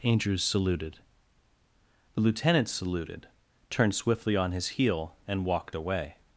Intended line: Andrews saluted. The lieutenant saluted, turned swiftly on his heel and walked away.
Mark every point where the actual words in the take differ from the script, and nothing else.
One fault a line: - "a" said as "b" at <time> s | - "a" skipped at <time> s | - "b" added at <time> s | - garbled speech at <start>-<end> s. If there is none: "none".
none